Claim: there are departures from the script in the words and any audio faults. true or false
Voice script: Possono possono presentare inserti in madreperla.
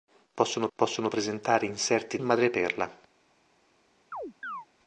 true